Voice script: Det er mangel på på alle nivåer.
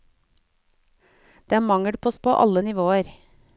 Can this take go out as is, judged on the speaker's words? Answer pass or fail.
pass